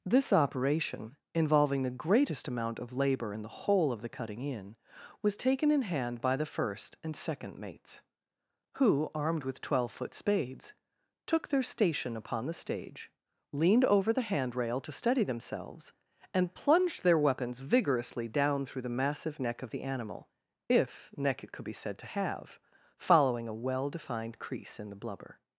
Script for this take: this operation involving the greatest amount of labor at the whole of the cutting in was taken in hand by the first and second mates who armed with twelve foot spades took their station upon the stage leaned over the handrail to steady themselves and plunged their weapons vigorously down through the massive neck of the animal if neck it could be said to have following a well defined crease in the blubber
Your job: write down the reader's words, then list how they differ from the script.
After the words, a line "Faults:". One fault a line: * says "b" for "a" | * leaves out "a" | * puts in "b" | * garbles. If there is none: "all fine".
this operation involving the greatest amount of labor in the whole of the cutting in was taken in hand by the first and second mates who armed with twelve foot spades took their station upon the stage leaned over the handrail to steady themselves and plunged their weapons vigorously down through the massive neck of the animal if neck it could be said to have following a well defined crease in the blubber
Faults:
* says "in" for "at"